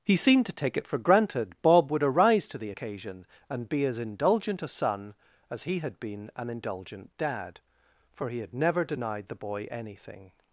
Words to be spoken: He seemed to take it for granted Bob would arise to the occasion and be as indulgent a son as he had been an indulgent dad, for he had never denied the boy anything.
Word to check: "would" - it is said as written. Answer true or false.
true